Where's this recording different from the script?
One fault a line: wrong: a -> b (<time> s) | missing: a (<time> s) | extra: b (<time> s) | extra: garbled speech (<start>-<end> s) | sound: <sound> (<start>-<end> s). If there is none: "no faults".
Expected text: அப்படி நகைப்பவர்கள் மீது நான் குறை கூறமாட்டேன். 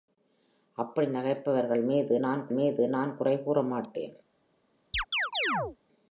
extra: மீது நான் (2.5 s)
sound: chirp (4.9-5.8 s)